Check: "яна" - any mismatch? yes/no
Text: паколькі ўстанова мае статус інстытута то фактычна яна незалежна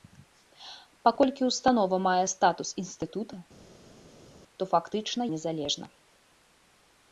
yes